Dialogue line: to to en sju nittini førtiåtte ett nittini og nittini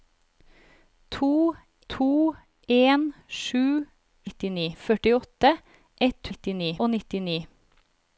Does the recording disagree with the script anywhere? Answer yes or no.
no